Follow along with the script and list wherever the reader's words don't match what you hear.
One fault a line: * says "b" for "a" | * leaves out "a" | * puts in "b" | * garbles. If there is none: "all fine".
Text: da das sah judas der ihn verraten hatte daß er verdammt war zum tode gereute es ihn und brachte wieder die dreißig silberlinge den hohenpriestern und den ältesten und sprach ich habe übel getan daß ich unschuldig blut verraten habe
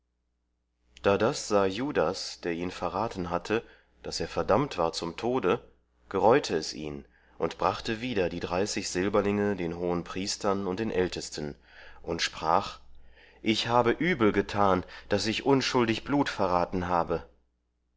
all fine